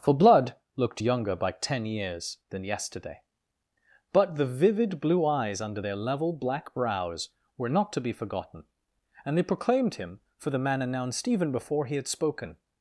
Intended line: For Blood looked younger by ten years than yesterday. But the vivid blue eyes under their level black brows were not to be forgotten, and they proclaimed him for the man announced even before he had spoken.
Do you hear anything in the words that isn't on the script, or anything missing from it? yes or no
no